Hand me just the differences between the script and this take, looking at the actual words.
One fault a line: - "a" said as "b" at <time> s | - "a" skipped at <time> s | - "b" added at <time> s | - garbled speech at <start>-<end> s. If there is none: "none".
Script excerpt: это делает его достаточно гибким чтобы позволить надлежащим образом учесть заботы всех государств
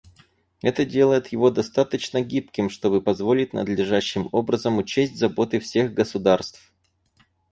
none